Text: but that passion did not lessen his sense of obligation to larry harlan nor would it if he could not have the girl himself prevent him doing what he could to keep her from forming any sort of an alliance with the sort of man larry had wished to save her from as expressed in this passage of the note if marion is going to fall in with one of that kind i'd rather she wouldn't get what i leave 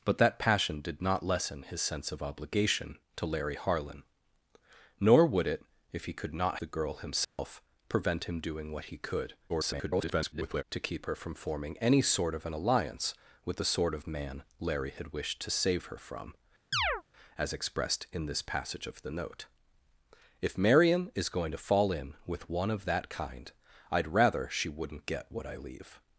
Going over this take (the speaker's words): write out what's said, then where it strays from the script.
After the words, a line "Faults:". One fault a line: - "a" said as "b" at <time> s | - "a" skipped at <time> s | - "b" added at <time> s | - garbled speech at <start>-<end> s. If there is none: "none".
but that passion did not lessen his sense of obligation to larry harlan nor would it if he could not the girl himself prevent him doing what he could [garbled] to keep her from forming any sort of an alliance with the sort of man larry had wished to save her from as expressed in this passage of the note if marion is going to fall in with one of that kind i'd rather she wouldn't get what i leave
Faults:
- "have" skipped at 6.6 s
- garbled speech at 9.5-10.6 s